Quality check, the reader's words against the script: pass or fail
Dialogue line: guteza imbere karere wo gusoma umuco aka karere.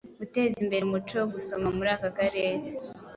fail